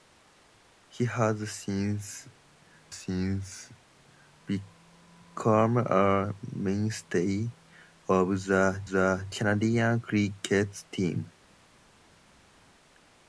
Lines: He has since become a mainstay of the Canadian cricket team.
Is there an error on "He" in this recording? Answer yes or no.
no